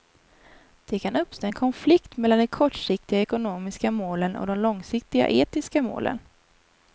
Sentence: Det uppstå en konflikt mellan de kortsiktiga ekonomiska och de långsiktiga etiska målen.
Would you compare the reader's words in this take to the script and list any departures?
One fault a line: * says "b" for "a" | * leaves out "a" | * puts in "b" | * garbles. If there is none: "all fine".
* puts in "kan"
* puts in "målen"